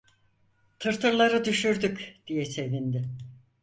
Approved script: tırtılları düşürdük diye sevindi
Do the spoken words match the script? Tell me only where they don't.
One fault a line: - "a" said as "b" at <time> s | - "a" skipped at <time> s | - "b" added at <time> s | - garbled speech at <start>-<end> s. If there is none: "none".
none